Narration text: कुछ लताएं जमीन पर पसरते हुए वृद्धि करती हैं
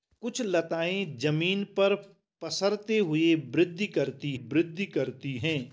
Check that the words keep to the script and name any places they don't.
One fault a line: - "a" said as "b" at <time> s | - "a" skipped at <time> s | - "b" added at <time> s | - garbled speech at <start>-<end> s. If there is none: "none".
- "वृद्धि करती" added at 4.3 s